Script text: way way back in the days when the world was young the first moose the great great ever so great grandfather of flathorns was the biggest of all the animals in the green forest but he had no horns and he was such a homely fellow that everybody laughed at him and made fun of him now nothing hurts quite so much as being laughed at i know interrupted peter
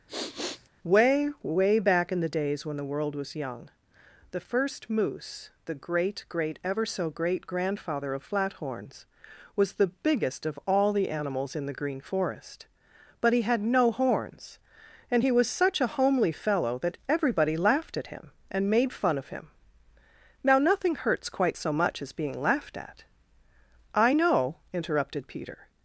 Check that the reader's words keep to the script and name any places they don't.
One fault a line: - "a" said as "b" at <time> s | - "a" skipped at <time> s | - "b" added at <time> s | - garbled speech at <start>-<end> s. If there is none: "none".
none